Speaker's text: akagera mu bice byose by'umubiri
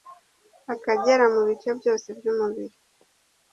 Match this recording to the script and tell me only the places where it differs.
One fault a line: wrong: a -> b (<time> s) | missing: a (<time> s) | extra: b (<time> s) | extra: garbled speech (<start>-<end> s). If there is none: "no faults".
no faults